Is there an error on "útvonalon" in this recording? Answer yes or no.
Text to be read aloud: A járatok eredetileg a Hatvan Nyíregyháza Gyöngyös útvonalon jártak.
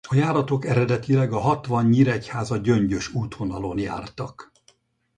no